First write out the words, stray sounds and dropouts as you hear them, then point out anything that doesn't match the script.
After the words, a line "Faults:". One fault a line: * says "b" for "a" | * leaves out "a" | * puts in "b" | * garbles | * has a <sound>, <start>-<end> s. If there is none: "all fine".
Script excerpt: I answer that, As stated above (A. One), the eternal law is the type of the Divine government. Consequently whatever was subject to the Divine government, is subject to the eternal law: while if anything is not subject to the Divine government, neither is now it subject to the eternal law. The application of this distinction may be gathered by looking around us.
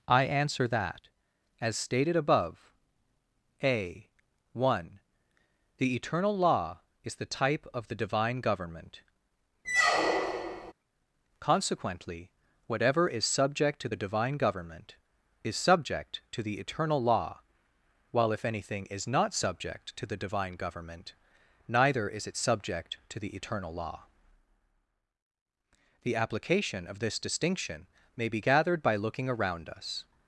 I answer that, As stated above (A. One), the eternal law is the type of the Divine government. Consequently whatever is subject to the Divine government, is subject to the eternal law: while if anything is not subject to the Divine government, neither is it subject to the eternal law. The application of this distinction may be gathered by looking around us.
Faults:
* has a squeak, 9.6-10.7 s
* says "is" for "was"
* leaves out "now"